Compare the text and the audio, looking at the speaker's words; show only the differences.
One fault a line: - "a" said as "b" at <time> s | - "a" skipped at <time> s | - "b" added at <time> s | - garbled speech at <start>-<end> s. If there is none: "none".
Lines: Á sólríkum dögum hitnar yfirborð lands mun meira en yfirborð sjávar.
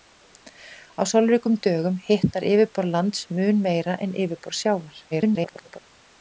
- garbled speech at 5.1-5.8 s